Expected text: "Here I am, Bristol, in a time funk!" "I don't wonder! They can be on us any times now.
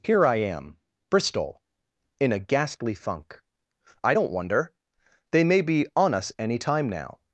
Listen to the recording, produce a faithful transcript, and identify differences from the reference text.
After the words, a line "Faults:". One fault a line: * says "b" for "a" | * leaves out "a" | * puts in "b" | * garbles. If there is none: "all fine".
"Here I am, Bristol, in a ghastly funk!" "I don't wonder! They may be on us any time now.
Faults:
* says "ghastly" for "time"
* says "may" for "can"
* says "time" for "times"